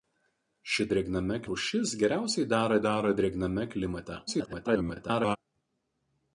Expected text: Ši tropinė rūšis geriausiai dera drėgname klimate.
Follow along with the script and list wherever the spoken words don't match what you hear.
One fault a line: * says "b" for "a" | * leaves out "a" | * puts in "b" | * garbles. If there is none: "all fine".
* says "drėgname" for "tropinė"
* puts in "dera"
* garbles